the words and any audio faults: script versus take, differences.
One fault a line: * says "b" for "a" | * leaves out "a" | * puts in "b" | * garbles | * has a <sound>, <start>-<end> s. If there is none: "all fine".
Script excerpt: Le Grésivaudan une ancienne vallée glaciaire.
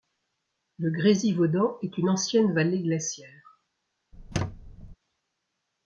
* puts in "est"
* has a squeak, 4.1-5.0 s